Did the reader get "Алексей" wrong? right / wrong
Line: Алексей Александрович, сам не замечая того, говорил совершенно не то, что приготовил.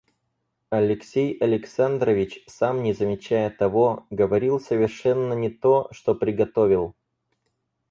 right